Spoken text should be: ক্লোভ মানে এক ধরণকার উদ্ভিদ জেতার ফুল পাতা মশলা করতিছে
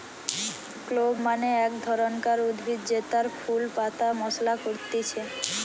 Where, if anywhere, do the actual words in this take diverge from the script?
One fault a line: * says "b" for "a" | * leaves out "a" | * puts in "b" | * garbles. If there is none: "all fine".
all fine